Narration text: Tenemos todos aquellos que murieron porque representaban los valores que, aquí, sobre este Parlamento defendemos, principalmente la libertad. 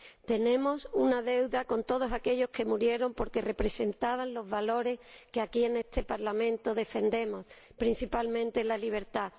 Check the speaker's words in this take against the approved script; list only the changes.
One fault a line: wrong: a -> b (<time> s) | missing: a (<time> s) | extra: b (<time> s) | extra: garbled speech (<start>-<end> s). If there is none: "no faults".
extra: una deuda con (0.9 s)
wrong: sobre -> en (5.6 s)